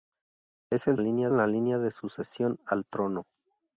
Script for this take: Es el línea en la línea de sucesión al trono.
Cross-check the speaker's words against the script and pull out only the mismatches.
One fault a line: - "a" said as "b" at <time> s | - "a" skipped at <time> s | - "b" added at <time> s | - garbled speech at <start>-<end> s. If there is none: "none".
none